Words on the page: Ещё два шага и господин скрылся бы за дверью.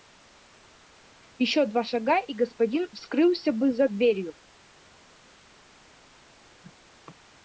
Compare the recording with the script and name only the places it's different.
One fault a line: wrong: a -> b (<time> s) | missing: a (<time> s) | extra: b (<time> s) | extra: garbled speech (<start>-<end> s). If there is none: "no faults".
no faults